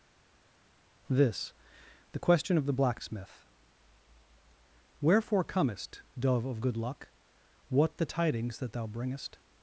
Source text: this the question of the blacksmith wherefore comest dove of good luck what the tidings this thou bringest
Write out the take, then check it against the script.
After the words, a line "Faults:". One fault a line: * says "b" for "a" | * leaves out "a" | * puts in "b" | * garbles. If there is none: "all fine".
this the question of the blacksmith wherefore comest dove of good luck what the tidings that thou bringest
Faults:
* says "that" for "this"